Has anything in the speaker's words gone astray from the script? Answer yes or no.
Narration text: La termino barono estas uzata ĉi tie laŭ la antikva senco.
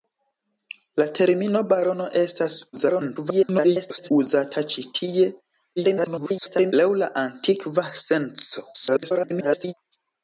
yes